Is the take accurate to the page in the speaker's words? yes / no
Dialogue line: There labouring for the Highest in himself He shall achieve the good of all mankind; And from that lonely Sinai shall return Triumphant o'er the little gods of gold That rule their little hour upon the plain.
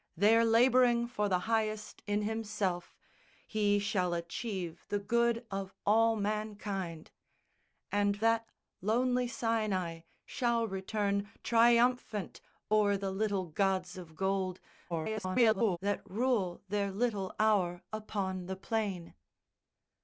no